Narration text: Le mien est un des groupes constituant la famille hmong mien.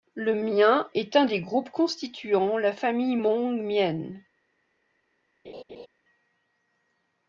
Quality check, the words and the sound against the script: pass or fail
fail